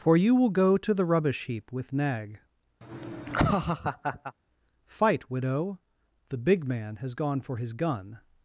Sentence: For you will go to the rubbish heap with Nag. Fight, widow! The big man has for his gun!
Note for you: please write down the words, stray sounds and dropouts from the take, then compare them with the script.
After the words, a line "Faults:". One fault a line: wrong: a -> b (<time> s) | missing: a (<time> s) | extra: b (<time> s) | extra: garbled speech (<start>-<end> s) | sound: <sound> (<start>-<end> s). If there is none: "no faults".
For you will go to the rubbish heap with Nag. Fight, widow! The big man has gone for his gun!
Faults:
sound: laugh (2.8-4.3 s)
extra: gone (7.1 s)